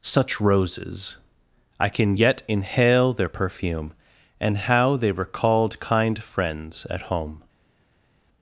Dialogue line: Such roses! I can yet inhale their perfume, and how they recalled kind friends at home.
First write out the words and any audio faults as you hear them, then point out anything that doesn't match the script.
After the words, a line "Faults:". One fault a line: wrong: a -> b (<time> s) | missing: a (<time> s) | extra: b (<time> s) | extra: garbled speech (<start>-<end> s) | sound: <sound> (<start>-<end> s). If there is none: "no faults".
Such roses! I can yet inhale their perfume, and how they recalled kind friends at home.
Faults:
no faults